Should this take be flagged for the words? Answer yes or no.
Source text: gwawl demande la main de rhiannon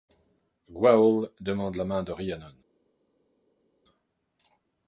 no